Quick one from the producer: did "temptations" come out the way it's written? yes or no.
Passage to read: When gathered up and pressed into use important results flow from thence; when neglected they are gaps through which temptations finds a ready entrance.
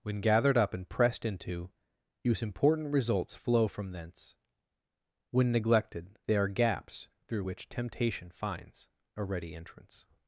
no